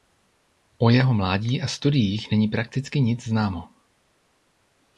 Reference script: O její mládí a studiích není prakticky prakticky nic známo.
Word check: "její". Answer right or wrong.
wrong